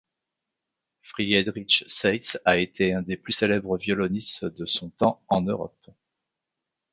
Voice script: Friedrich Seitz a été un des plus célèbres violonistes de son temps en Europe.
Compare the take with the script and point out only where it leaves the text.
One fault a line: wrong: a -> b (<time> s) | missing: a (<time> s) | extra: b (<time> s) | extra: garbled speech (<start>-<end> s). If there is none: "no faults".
no faults